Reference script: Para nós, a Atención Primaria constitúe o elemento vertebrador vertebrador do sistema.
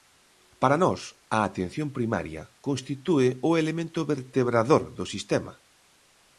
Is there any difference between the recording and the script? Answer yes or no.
yes